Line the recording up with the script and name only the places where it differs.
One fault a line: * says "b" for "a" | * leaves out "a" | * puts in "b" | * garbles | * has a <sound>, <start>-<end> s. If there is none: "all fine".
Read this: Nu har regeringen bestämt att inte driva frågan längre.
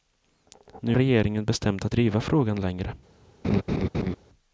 * leaves out "har"
* leaves out "inte"
* has a laugh, 3.4-4.2 s